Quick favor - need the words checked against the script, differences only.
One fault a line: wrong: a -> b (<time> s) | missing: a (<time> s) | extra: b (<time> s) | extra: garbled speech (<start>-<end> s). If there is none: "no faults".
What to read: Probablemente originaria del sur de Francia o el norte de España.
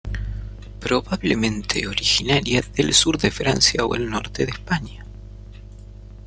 no faults